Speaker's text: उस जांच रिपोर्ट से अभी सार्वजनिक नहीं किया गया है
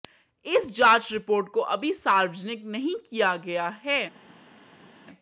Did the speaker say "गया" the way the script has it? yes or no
yes